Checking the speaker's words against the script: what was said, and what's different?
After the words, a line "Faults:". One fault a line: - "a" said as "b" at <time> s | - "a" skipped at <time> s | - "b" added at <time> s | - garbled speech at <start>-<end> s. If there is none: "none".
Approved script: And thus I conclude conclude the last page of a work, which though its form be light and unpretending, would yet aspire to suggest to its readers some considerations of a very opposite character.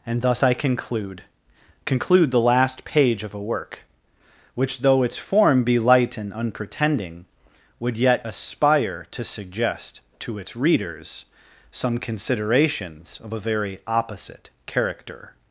And thus I conclude conclude the last page of a work, which though its form be light and unpretending, would yet aspire to suggest to its readers some considerations of a very opposite character.
Faults:
none